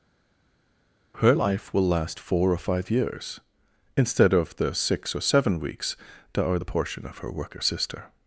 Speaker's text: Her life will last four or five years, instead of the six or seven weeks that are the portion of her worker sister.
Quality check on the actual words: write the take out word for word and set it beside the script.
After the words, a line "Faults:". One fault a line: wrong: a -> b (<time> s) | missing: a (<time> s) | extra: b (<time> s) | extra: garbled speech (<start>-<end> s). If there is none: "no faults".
Her life will last four or five years, instead of the six or seven weeks that are the portion of her worker sister.
Faults:
no faults